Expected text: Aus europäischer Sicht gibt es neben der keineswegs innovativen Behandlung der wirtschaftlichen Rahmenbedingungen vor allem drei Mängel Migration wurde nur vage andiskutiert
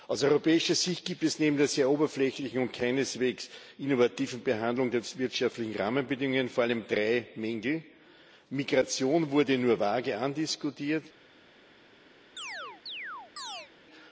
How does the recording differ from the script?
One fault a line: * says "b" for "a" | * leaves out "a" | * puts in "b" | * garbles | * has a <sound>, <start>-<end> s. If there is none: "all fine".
* puts in "sehr oberflächlichen und"
* has a chirp, 12.4-13.7 s